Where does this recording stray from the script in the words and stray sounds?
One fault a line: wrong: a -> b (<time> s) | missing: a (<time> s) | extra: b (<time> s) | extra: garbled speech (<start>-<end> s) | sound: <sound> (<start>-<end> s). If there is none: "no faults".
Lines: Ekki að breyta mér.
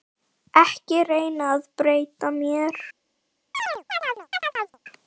extra: reyna (1.1 s)
sound: chirp (3.5-4.8 s)